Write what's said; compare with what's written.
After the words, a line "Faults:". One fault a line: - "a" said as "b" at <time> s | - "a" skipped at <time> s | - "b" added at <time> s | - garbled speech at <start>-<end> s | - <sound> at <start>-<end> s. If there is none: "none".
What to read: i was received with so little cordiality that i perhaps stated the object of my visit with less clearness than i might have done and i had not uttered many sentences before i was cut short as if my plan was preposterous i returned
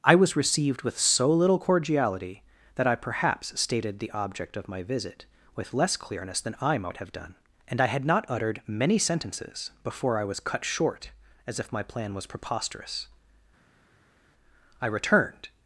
i was received with so little cordiality that i perhaps stated the object of my visit with less clearness than i might have done and i had not uttered many sentences before i was cut short as if my plan was preposterous i returned
Faults:
none